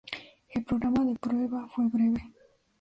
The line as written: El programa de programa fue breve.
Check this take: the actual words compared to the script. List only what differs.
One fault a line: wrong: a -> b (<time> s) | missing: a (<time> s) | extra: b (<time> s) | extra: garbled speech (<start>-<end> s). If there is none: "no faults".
wrong: programa -> prueba (1.1 s)